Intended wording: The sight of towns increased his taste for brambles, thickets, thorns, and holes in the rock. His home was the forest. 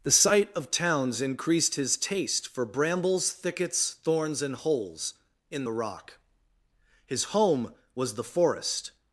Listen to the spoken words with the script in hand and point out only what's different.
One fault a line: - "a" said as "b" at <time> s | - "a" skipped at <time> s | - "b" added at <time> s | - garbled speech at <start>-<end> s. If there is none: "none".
none